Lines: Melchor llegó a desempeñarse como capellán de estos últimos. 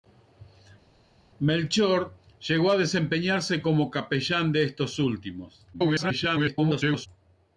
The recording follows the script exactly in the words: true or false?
false